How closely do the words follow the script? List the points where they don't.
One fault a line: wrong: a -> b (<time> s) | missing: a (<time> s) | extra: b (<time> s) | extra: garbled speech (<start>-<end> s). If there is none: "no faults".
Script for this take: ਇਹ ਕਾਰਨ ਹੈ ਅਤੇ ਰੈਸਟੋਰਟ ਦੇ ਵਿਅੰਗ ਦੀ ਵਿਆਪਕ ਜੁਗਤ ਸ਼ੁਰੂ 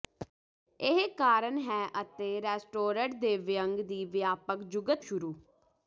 no faults